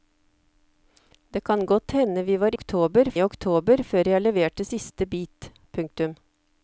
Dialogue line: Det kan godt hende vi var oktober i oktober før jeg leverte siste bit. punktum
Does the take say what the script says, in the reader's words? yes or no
yes